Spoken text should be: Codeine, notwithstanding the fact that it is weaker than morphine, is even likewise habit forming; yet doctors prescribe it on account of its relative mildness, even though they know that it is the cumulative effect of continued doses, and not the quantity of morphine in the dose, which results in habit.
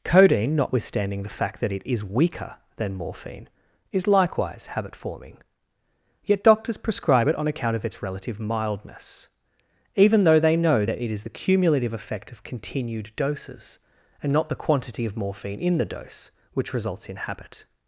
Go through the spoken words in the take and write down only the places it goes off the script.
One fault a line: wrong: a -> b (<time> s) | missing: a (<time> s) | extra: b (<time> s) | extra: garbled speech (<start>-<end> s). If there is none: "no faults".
missing: even (4.1 s)